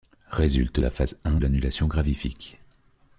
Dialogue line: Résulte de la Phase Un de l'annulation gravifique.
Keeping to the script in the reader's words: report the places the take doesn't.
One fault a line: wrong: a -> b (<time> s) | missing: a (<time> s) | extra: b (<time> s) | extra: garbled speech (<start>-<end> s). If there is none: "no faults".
missing: de (0.8 s)
missing: de (1.4 s)